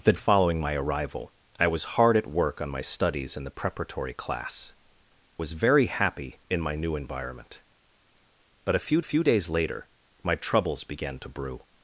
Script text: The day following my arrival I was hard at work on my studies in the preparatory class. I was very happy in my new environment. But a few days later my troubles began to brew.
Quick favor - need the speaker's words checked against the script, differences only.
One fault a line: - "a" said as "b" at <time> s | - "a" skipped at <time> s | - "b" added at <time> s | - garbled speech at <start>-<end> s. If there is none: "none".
- "day" skipped at 0.1 s
- "I" skipped at 4.7 s
- "few" added at 9.0 s